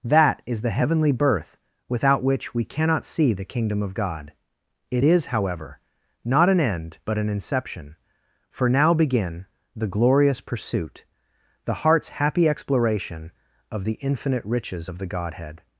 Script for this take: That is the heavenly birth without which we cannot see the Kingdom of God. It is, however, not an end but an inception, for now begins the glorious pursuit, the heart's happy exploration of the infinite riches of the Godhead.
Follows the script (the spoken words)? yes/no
no